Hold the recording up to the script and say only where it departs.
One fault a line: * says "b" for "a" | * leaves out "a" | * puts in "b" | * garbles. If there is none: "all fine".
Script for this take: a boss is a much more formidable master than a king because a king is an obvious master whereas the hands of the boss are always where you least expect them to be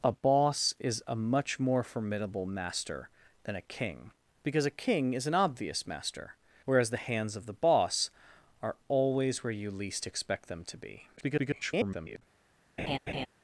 * garbles